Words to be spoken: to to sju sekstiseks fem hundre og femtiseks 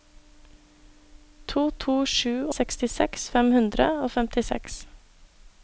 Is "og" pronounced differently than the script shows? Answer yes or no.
no